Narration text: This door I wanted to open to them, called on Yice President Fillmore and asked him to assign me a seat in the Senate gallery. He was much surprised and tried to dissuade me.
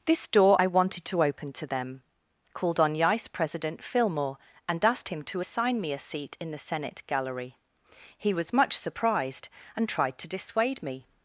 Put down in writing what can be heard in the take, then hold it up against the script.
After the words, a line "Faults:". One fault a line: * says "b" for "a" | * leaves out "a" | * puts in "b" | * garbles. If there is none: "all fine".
This door I wanted to open to them, called on Yice President Fillmore and asked him to assign me a seat in the Senate gallery. He was much surprised and tried to dissuade me.
Faults:
all fine